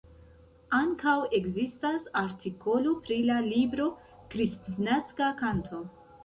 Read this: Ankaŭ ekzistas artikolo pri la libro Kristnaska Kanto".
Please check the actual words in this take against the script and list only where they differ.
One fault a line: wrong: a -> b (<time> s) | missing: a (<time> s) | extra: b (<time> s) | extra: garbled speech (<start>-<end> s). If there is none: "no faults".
no faults